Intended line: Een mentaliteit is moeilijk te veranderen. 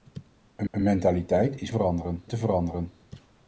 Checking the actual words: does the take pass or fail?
fail